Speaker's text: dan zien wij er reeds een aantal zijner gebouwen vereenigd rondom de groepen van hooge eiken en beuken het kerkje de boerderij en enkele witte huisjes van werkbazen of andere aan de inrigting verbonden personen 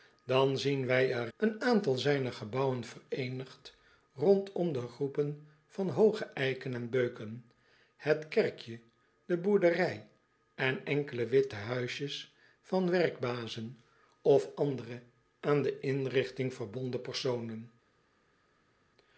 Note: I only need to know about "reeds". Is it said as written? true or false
false